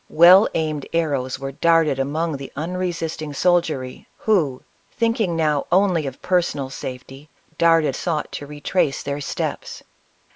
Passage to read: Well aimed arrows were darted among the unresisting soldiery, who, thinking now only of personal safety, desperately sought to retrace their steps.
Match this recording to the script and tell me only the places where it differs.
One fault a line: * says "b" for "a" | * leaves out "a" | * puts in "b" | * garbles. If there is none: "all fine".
* says "darted" for "desperately"